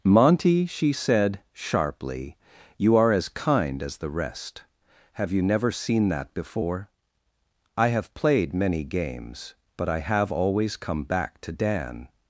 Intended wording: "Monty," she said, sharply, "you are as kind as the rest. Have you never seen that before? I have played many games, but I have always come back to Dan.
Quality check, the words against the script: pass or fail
pass